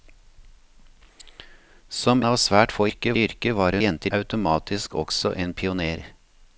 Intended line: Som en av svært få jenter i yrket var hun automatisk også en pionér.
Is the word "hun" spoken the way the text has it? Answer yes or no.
no